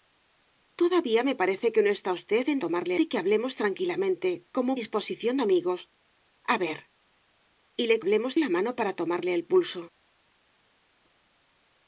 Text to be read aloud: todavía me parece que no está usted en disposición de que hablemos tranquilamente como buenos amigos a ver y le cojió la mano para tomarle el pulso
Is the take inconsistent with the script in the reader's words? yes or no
yes